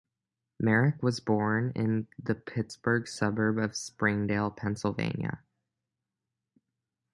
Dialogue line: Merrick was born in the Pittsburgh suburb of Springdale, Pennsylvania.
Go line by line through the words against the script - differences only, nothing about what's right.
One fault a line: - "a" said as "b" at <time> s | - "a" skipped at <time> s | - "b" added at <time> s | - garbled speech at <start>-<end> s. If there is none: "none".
none